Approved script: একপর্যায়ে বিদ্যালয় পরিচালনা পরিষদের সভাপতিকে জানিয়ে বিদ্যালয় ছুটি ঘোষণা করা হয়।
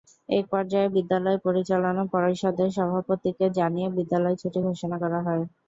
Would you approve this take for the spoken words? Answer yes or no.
yes